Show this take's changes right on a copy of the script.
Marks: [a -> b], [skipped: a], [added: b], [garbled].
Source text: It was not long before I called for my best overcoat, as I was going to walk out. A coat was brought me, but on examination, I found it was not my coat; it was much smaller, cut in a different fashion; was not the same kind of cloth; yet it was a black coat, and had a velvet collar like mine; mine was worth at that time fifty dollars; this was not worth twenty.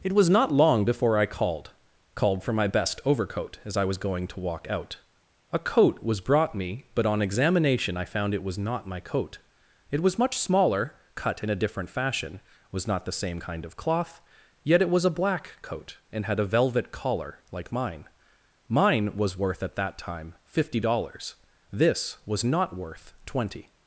It was not long before I called [added: called] for my best overcoat, as I was going to walk out. A coat was brought me, but on examination, I found it was not my coat; it was much smaller, cut in a different fashion; was not the same kind of cloth; yet it was a black coat, and had a velvet collar like mine; mine was worth at that time fifty dollars; this was not worth twenty.